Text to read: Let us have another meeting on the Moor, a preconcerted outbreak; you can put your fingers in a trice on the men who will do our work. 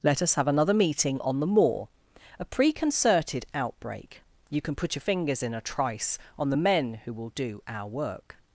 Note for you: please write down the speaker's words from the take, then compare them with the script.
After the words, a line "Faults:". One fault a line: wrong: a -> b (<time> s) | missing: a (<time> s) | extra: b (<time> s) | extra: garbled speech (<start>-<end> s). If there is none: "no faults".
Let us have another meeting on the Moor, a preconcerted outbreak; you can put your fingers in a trice on the men who will do our work.
Faults:
no faults